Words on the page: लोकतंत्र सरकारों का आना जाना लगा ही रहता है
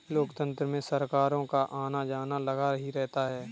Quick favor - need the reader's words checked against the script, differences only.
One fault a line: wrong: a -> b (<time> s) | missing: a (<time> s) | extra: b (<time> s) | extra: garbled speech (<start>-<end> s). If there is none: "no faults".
extra: में (0.7 s)